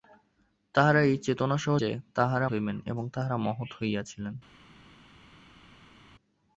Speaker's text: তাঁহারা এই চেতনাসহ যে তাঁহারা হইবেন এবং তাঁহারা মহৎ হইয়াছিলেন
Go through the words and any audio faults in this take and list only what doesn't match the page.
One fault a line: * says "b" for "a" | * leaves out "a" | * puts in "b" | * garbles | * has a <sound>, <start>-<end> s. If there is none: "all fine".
all fine